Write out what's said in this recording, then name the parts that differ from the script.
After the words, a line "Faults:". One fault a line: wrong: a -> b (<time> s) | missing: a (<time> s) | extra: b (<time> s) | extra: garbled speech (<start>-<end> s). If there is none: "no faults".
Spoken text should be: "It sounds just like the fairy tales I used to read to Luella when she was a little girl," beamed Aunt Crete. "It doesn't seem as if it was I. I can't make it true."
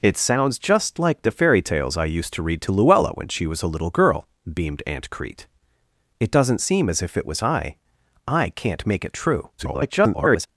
"It sounds just like the fairy tales I used to read to Luella when she was a little girl," beamed Aunt Crete. "It doesn't seem as if it was I. I can't make it true." [garbled]
Faults:
extra: garbled speech (9.6-10.5 s)